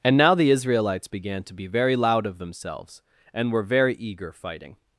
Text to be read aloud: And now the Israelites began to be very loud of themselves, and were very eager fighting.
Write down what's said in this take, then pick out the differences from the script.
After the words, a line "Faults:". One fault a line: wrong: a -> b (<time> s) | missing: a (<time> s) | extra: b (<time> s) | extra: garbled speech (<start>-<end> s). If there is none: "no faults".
And now the Israelites began to be very loud of themselves, and were very eager fighting.
Faults:
no faults